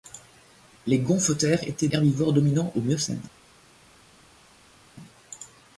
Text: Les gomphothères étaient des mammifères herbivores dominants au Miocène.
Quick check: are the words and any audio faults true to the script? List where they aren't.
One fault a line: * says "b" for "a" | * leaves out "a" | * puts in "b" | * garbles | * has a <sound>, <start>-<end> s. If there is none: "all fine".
* leaves out "des mammifères"